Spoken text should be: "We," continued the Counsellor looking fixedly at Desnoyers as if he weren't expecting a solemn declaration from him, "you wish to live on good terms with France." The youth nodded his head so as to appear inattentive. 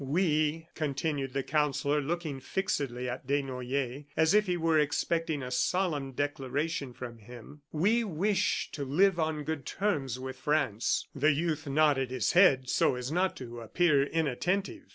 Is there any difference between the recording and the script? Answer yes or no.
yes